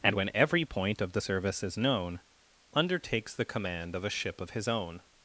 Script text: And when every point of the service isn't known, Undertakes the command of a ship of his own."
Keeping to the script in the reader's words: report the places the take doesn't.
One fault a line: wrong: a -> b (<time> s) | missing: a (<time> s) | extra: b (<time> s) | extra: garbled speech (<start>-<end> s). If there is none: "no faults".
wrong: isn't -> is (1.6 s)